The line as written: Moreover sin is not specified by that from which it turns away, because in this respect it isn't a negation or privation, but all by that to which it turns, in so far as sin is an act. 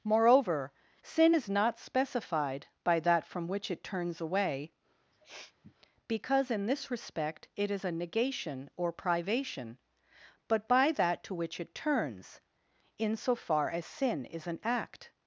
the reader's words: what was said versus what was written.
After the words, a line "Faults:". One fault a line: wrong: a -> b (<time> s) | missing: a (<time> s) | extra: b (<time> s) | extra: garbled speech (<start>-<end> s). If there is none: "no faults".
Moreover sin is not specified by that from which it turns away, because in this respect it is a negation or privation, but by that to which it turns, in so far as sin is an act.
Faults:
wrong: isn't -> is (7.7 s)
missing: all (10.7 s)